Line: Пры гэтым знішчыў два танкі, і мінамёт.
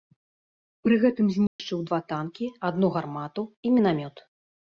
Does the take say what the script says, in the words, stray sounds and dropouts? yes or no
no